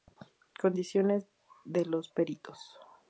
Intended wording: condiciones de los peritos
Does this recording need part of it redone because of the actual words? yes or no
no